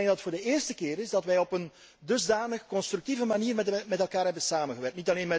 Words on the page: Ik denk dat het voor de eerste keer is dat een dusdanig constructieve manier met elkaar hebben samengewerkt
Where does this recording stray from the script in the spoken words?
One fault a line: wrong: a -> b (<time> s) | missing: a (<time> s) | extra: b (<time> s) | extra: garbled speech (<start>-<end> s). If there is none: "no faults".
extra: wij op (1.2 s)